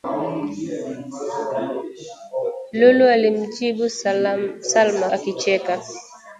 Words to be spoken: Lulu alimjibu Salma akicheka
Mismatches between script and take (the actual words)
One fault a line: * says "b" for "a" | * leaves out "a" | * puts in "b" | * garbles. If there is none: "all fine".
all fine